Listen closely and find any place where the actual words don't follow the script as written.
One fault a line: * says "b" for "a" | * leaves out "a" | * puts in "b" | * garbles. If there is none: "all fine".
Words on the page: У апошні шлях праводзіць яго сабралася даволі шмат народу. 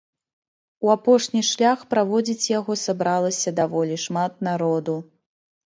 all fine